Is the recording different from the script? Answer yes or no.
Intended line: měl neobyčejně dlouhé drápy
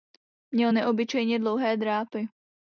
no